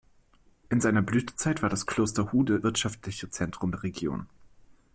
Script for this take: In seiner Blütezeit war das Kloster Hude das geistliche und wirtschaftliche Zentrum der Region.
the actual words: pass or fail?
fail